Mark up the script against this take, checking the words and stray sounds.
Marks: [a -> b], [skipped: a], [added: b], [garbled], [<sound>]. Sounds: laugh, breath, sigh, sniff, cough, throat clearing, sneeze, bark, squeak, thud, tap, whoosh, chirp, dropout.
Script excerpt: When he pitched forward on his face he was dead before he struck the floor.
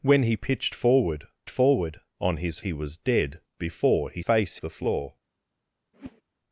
When he pitched forward [added: forward] on his [skipped: face] he was dead before he [struck -> face] the floor. [whoosh]